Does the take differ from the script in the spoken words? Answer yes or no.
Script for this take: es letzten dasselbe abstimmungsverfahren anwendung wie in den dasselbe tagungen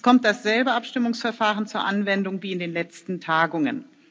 yes